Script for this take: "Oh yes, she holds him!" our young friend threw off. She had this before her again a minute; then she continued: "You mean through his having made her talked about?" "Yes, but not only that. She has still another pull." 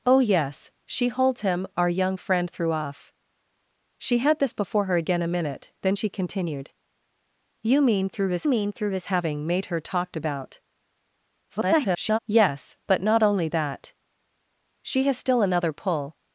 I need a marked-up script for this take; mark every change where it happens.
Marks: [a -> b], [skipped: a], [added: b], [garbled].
"Oh yes, she holds him!" our young friend threw off. She had this before her again a minute; then she continued: "You mean through his [added: mean through his] having made her talked about?" [garbled] "Yes, but not only that. She has still another pull."